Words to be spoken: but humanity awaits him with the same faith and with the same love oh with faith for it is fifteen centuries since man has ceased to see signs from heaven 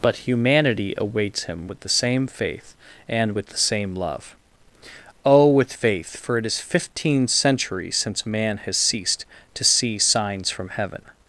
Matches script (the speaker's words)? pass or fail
pass